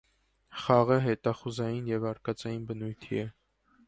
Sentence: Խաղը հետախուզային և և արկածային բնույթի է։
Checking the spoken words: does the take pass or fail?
fail